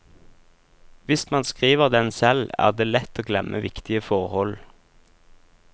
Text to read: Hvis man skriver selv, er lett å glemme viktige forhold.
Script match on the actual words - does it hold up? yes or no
no